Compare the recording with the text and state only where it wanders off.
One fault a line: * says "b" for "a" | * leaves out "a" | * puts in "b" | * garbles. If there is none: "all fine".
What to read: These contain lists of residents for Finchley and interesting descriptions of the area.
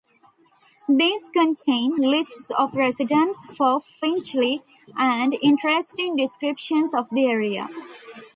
all fine